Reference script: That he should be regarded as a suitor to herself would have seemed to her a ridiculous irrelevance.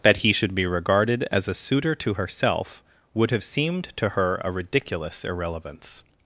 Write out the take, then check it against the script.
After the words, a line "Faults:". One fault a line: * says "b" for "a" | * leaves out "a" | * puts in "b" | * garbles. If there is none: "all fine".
That he should be regarded as a suitor to herself would have seemed to her a ridiculous irrelevance.
Faults:
all fine